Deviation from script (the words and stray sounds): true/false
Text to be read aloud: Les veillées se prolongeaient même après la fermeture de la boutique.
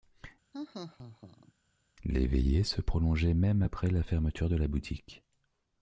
true